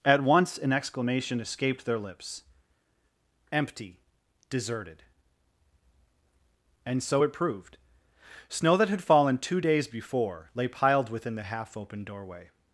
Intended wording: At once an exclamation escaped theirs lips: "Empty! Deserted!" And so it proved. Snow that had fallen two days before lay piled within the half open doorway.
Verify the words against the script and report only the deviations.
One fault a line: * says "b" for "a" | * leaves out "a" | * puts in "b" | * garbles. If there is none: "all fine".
* says "their" for "theirs"